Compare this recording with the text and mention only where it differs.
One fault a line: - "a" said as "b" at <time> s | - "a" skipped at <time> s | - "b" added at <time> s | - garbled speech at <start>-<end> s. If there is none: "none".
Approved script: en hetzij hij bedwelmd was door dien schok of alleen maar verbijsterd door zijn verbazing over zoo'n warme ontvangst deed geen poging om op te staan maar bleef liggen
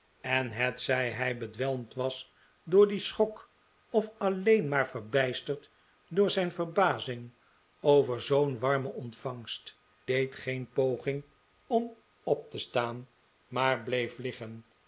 none